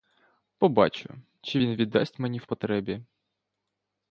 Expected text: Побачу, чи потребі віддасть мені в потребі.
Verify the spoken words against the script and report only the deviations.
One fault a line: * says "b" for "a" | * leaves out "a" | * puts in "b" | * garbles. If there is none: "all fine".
* says "він" for "потребі"